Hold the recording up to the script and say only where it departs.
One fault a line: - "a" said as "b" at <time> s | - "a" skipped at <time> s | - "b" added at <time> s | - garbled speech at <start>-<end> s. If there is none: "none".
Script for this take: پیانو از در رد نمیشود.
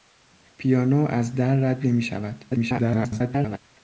- garbled speech at 2.5-3.6 s